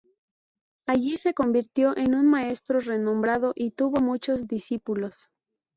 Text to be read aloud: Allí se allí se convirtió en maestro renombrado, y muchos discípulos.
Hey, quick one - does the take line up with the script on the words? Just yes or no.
no